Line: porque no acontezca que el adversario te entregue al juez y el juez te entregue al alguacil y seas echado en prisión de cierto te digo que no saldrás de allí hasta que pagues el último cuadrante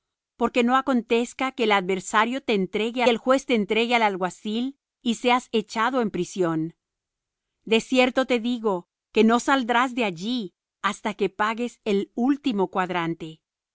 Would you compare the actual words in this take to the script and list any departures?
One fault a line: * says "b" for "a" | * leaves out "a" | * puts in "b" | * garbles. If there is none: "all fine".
* leaves out "al juez y"